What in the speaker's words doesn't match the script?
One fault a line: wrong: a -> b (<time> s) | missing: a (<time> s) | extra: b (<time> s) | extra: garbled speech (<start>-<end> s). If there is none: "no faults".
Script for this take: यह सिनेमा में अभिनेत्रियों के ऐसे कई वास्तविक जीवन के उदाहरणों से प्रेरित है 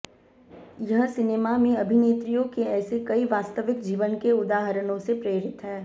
no faults